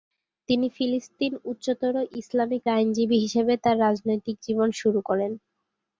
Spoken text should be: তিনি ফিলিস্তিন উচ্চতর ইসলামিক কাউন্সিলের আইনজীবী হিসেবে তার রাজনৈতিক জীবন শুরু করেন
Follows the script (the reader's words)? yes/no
no